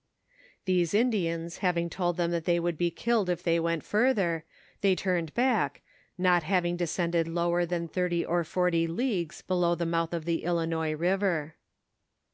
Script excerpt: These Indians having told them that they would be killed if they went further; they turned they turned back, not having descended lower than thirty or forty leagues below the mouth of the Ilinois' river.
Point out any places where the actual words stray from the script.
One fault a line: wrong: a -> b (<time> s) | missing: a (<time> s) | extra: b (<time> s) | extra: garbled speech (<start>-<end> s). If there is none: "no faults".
missing: they turned (5.3 s)